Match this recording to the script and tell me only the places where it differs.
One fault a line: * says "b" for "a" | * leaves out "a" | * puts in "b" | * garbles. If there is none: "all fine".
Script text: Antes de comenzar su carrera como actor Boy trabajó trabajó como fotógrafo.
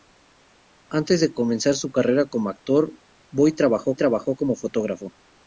all fine